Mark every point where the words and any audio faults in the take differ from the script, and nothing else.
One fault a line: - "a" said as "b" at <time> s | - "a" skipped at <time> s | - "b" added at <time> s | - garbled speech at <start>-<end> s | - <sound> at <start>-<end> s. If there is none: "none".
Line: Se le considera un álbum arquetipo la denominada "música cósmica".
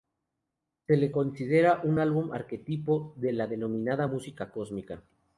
- "de" added at 3.2 s